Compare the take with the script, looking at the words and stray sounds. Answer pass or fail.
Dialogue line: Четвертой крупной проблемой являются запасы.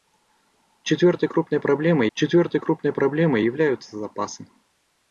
fail